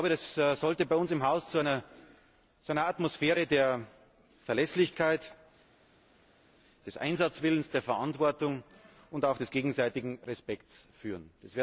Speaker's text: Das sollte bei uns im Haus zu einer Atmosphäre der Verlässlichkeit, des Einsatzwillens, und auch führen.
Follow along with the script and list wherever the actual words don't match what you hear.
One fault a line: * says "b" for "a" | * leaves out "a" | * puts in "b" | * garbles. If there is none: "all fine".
* puts in "der Verantwortung"
* puts in "des gegenseitigen Respekts"